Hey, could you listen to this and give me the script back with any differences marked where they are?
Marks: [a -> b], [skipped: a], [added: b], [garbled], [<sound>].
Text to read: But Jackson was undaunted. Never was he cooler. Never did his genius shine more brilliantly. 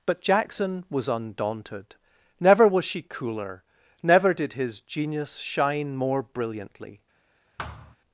But Jackson was undaunted. Never was [he -> she] cooler. Never did his genius shine more brilliantly. [thud]